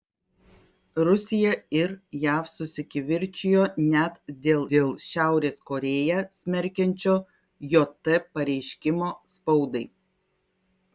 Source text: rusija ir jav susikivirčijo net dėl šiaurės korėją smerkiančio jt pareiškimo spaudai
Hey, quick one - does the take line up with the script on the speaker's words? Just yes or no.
no